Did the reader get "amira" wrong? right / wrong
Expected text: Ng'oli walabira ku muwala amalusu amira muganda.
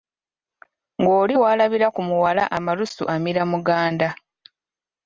right